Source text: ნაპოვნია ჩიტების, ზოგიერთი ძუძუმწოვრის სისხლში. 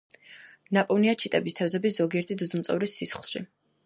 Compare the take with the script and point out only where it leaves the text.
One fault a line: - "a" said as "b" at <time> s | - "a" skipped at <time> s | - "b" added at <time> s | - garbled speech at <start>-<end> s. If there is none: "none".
- "თევზების" added at 1.6 s